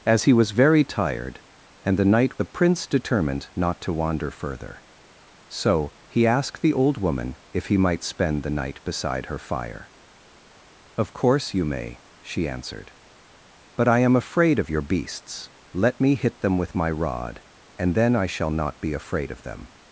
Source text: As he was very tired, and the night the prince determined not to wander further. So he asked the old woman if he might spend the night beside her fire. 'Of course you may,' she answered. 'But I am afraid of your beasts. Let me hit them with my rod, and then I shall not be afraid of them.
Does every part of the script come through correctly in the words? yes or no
yes